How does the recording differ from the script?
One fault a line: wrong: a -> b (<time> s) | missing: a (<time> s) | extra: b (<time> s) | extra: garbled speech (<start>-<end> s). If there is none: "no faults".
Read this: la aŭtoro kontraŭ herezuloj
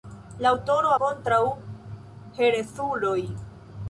no faults